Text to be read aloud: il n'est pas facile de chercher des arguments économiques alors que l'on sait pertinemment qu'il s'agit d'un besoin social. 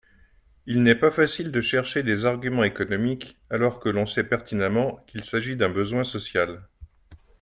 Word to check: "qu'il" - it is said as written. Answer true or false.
true